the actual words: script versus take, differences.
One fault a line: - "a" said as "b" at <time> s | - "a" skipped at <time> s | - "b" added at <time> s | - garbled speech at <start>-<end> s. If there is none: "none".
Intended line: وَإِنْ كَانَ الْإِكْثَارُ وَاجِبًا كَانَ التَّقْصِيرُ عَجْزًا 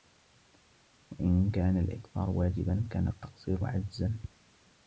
none